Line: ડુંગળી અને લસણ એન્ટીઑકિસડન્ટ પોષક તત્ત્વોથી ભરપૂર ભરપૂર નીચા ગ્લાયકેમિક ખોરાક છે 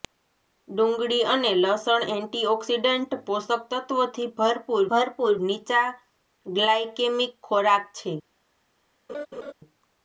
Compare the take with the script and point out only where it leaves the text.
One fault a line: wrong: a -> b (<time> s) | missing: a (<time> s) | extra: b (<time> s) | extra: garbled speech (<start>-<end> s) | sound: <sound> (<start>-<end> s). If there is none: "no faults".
sound: laugh (9.1-9.5 s)